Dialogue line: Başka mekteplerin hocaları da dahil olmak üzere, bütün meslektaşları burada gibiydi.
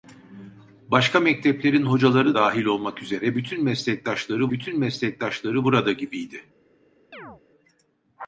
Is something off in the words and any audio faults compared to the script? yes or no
yes